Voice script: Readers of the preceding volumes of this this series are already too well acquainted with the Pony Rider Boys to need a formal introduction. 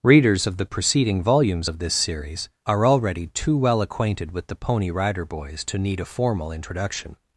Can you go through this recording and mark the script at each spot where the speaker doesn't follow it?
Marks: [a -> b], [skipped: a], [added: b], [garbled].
Readers of the preceding volumes of this [skipped: this] series are already too well acquainted with the Pony Rider Boys to need a formal introduction.